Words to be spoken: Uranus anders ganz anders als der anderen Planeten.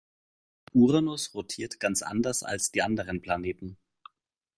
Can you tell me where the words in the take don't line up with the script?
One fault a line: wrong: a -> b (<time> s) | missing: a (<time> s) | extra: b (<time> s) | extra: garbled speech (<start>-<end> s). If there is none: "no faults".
wrong: anders -> rotiert (1.4 s)
wrong: der -> die (2.7 s)